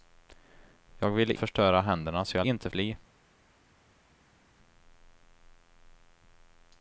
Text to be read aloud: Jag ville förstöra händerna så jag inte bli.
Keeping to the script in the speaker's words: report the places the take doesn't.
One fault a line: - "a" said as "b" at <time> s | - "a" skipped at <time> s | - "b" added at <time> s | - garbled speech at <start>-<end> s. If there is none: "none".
none